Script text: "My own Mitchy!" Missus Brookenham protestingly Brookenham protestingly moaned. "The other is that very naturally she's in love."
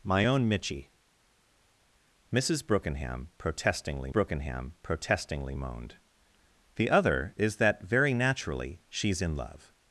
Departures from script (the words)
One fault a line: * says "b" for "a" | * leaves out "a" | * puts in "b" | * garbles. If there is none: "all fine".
all fine